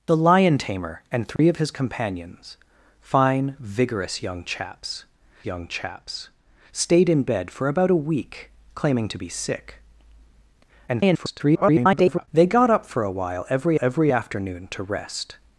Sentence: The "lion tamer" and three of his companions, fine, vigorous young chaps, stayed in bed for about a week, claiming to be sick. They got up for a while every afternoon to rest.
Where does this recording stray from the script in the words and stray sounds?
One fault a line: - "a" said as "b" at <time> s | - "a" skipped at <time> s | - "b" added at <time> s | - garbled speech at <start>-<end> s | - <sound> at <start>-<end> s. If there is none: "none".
- dropout at 1.4-1.4 s
- "young chaps" added at 5.5 s
- garbled speech at 10.9-12.3 s
- "every" added at 13.8 s